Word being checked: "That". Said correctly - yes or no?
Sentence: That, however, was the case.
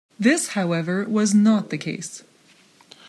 no